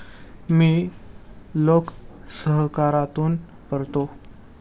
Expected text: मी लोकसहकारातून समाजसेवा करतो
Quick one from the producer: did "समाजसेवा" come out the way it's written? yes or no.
no